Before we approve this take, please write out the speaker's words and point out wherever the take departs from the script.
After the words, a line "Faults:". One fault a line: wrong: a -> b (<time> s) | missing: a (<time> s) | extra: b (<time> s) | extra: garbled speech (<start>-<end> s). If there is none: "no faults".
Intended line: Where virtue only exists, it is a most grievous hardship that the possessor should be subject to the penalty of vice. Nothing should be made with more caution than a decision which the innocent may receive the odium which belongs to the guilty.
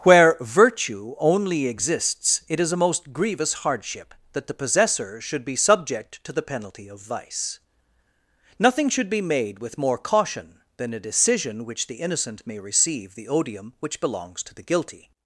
Where virtue only exists, it is a most grievous hardship that the possessor should be subject to the penalty of vice. Nothing should be made with more caution than a decision which the innocent may receive the odium which belongs to the guilty.
Faults:
no faults